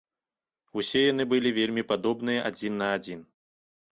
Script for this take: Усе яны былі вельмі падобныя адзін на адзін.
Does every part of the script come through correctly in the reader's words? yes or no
yes